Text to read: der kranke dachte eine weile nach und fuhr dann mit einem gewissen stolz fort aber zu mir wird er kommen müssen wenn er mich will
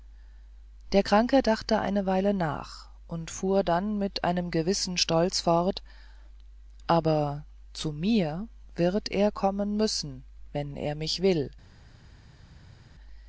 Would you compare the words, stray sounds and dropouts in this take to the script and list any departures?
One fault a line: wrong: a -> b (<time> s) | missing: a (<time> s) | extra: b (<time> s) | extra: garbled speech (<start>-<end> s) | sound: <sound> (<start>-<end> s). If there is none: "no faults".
no faults